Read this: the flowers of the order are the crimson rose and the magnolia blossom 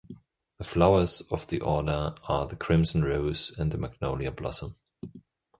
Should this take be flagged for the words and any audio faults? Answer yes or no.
no